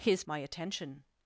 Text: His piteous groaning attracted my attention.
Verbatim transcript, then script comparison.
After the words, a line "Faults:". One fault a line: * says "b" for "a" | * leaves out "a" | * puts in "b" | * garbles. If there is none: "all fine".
His my attention.
Faults:
* leaves out "piteous groaning attracted"